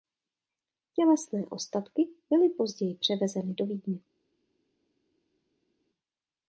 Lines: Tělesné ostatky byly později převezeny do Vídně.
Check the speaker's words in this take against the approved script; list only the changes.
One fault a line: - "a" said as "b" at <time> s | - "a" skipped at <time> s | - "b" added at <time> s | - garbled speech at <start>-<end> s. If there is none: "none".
none